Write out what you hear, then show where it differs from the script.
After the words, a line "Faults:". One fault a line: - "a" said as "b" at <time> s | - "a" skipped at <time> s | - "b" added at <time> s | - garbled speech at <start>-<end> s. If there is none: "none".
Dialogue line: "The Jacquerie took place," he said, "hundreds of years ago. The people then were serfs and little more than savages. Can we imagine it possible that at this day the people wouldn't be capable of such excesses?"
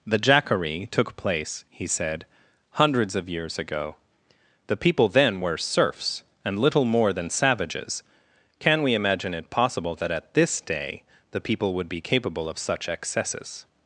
"The Jacquerie took place," he said, "hundreds of years ago. The people then were serfs and little more than savages. Can we imagine it possible that at this day the people would be capable of such excesses?"
Faults:
- "wouldn't" said as "would" at 11.7 s